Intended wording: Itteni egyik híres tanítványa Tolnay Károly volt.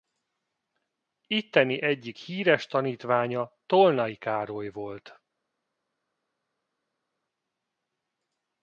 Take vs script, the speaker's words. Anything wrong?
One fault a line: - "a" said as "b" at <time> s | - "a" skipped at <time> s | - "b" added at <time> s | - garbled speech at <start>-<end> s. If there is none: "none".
none